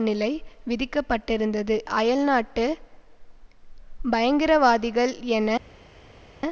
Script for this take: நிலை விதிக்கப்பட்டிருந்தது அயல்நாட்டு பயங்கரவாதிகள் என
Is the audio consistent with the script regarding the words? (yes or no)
yes